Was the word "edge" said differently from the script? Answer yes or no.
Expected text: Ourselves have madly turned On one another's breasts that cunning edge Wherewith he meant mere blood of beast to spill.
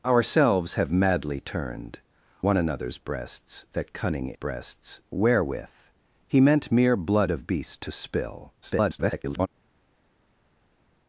yes